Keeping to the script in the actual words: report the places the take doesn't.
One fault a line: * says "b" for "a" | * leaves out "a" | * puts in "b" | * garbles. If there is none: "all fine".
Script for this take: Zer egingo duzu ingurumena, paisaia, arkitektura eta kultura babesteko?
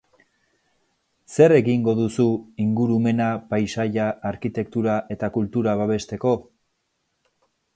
all fine